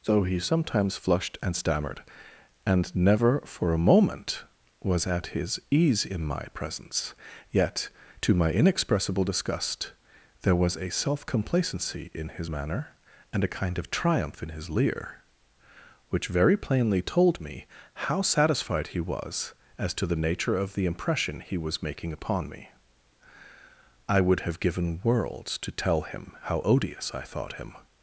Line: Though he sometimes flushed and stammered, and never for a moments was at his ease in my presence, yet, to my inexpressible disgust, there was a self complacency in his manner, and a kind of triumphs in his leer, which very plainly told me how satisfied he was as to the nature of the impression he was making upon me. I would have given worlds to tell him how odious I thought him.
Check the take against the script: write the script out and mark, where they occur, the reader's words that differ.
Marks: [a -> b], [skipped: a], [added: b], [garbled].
Though he sometimes flushed and stammered, and never for a [moments -> moment] was at his ease in my presence, yet, to my inexpressible disgust, there was a self complacency in his manner, and a kind of [triumphs -> triumph] in his leer, which very plainly told me how satisfied he was as to the nature of the impression he was making upon me. I would have given worlds to tell him how odious I thought him.